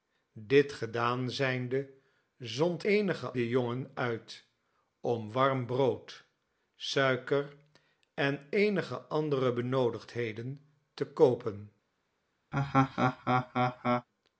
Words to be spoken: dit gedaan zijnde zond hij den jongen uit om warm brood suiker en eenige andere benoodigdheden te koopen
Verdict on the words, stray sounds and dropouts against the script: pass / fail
fail